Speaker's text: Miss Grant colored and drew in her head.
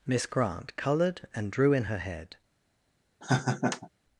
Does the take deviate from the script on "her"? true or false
false